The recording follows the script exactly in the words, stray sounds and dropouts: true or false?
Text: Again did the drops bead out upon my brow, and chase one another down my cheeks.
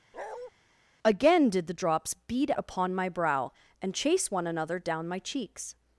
false